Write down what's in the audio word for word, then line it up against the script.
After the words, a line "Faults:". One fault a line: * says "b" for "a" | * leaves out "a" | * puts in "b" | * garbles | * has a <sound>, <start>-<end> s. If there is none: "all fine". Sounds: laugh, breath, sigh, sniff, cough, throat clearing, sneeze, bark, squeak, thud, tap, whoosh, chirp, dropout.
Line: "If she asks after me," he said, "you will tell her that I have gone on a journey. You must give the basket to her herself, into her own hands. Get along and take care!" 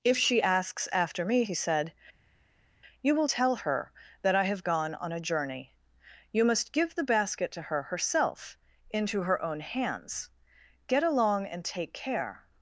"If she asks after me," he said, "you will tell her that I have gone on a journey. You must give the basket to her herself, into her own hands. Get along and take care!"
Faults:
all fine